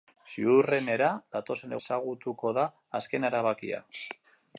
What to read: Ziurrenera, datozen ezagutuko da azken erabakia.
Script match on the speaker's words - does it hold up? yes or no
yes